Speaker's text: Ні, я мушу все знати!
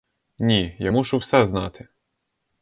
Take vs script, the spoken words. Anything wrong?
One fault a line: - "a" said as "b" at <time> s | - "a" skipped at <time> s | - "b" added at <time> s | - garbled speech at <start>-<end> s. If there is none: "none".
none